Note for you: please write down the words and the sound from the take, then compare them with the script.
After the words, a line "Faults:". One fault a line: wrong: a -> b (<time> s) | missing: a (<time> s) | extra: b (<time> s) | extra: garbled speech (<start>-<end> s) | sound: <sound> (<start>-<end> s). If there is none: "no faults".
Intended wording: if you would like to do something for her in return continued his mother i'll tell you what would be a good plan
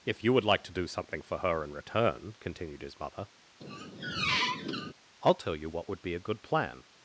if you would like to do something for her in return continued his mother i'll tell you what would be a good plan
Faults:
sound: squeak (3.6-4.9 s)